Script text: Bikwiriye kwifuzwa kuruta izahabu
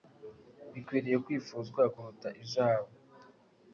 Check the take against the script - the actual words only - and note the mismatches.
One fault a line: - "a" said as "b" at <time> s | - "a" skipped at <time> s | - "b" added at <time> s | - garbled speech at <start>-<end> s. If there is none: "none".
none